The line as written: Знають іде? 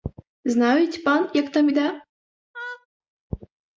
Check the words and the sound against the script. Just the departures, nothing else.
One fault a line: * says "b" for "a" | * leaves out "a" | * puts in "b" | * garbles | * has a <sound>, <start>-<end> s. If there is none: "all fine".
* puts in "пан як там"
* has a laugh, 2.5-2.9 s